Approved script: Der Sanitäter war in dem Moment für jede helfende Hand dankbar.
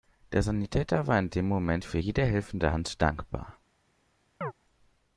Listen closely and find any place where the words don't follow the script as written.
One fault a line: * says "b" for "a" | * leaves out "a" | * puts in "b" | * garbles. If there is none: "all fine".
all fine